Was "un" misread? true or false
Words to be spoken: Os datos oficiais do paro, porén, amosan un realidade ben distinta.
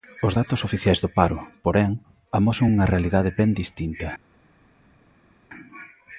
true